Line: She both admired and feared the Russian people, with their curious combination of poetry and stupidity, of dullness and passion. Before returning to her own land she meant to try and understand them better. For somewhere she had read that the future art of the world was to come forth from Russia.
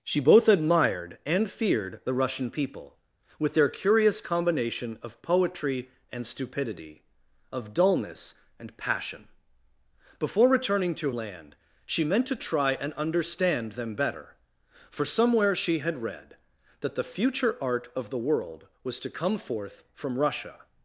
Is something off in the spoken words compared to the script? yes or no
yes